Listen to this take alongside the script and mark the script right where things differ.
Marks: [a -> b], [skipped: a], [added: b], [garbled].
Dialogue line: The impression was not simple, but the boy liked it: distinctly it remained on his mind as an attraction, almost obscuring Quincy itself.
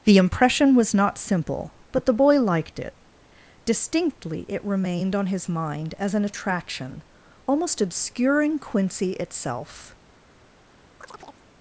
The impression was not simple, but the boy liked it: distinctly it remained on his mind as an attraction, almost obscuring Quincy itself.